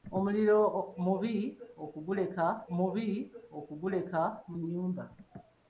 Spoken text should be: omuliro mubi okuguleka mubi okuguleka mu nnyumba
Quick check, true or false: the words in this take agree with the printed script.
true